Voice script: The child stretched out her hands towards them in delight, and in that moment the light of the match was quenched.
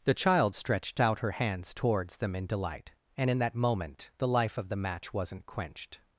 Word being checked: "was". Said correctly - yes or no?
no